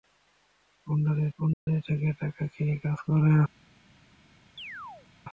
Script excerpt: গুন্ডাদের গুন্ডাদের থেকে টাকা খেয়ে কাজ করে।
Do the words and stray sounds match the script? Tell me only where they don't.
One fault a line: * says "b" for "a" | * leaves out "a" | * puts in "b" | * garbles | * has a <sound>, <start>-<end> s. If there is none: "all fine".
* has a dropout, 1.5-1.7 s
* has a chirp, 4.6-5.1 s